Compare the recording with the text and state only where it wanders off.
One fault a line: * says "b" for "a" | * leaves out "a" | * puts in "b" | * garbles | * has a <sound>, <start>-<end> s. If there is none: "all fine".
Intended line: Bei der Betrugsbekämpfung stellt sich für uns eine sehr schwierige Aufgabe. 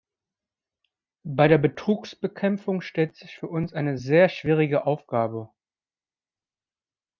all fine